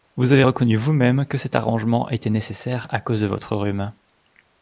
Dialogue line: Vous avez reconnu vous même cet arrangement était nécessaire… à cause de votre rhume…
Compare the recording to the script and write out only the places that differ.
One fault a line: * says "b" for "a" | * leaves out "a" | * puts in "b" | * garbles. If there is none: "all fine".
* puts in "que"